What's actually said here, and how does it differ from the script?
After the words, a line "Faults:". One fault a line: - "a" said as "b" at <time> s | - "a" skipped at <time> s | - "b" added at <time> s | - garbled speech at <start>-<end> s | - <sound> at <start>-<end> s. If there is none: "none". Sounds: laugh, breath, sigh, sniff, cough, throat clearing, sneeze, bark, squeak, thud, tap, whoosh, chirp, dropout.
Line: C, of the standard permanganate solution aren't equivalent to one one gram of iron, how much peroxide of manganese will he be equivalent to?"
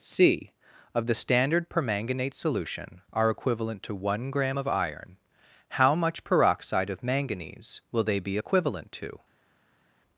C, of the standard permanganate solution are equivalent to one gram of iron, how much peroxide of manganese will they be equivalent to?"
Faults:
- "aren't" said as "are" at 3.1 s
- "one" skipped at 4.3 s
- "he" said as "they" at 8.0 s